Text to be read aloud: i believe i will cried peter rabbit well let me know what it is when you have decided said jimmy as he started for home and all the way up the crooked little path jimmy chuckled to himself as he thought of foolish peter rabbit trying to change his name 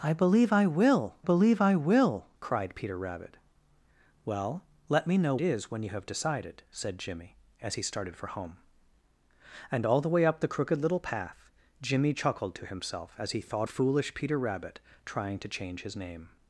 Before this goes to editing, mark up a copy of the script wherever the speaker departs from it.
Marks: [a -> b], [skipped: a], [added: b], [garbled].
i believe i will [added: believe i will] cried peter rabbit well let me know [skipped: what it] is when you have decided said jimmy as he started for home and all the way up the crooked little path jimmy chuckled to himself as he thought [skipped: of] foolish peter rabbit trying to change his name